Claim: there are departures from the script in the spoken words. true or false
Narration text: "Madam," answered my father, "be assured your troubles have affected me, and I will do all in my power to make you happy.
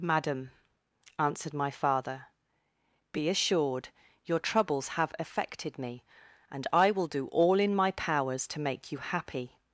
true